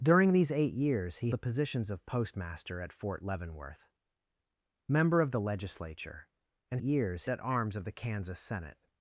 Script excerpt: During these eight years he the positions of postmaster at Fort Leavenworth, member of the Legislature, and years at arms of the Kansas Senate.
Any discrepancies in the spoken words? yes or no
no